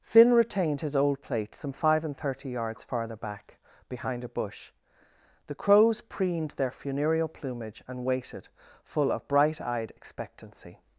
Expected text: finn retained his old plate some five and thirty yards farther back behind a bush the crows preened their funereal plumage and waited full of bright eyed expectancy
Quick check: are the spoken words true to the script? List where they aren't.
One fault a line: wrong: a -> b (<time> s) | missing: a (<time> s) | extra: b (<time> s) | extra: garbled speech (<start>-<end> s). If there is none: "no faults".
no faults